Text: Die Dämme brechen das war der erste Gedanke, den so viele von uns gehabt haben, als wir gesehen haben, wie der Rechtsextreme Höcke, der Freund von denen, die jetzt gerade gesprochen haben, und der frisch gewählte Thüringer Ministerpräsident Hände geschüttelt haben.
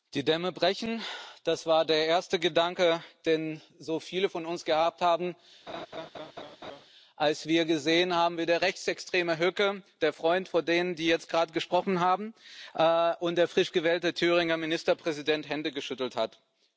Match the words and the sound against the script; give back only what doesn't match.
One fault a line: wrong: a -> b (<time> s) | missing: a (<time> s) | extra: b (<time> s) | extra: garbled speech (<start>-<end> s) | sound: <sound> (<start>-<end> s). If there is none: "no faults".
sound: laugh (5.7-6.9 s)